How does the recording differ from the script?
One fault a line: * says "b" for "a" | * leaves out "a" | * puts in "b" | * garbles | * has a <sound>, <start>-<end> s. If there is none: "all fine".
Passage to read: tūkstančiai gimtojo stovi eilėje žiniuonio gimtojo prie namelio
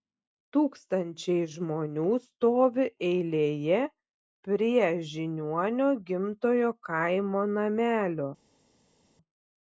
* says "žmonių" for "gimtojo"
* puts in "prie"
* says "kaimo" for "prie"